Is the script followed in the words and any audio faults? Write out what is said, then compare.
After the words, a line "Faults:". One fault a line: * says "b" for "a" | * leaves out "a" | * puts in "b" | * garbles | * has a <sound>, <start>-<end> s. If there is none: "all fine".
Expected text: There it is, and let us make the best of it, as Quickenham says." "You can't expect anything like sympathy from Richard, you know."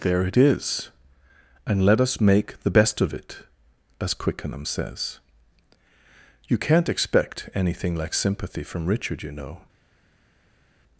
There it is, and let us make the best of it, as Quickenham says." "You can't expect anything like sympathy from Richard, you know."
Faults:
all fine